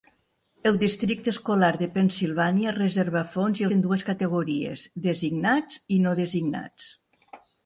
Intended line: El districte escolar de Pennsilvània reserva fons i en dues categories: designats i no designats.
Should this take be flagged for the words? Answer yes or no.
no